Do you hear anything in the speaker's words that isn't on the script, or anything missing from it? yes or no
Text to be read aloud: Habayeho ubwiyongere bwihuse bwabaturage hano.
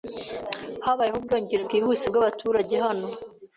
no